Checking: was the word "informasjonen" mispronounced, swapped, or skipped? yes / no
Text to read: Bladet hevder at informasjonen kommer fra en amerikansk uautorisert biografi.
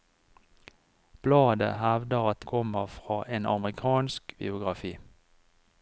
yes